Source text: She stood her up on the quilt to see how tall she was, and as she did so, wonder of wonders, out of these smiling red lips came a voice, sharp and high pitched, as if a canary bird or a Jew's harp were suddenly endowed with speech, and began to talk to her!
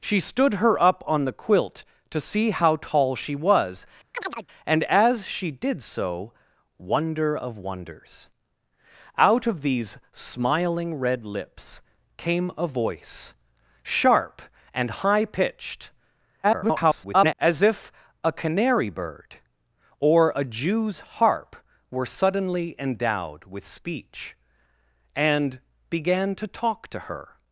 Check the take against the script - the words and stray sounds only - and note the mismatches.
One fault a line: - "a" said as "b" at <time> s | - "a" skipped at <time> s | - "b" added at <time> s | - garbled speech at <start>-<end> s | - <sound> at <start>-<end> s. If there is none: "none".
- chirp at 4.1-4.5 s
- garbled speech at 16.4-17.3 s